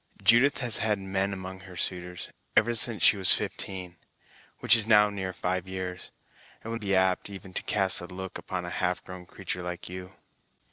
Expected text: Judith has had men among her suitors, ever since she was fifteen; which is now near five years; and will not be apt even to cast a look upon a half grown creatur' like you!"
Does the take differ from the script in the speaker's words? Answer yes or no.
yes